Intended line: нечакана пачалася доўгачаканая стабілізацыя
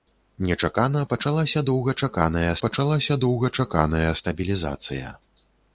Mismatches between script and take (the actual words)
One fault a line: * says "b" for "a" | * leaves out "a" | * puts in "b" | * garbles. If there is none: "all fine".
* puts in "пачалася доўгачаканая"